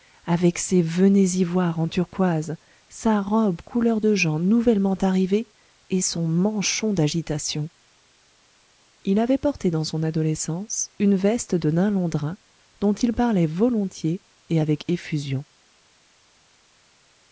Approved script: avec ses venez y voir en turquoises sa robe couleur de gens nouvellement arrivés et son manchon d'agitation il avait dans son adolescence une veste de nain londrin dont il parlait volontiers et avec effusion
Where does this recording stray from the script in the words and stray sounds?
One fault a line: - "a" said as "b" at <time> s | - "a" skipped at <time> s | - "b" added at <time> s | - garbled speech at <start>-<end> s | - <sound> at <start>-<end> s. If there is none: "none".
- "porté" added at 9.4 s